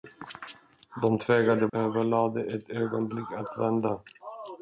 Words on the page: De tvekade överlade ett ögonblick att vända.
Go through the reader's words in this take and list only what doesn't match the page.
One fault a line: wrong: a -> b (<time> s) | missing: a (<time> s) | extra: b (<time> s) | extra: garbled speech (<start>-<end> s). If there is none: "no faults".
no faults